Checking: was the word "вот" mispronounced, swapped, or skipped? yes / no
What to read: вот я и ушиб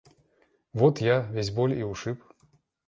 no